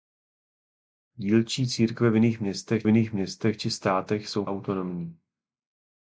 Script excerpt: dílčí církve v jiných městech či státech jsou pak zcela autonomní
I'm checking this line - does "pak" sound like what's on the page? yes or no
no